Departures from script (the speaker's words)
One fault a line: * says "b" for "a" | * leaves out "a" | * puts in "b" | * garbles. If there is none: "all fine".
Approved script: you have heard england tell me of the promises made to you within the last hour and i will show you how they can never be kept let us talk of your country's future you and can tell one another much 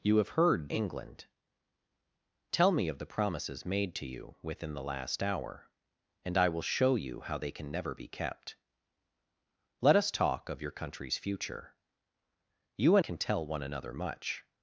all fine